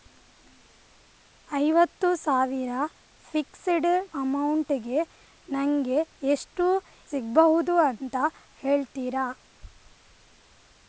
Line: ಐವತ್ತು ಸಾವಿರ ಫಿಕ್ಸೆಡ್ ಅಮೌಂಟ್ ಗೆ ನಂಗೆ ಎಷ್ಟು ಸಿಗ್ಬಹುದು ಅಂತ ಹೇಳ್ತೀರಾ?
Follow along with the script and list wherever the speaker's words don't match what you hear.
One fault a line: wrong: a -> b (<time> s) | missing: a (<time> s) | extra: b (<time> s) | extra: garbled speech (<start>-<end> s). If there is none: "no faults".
no faults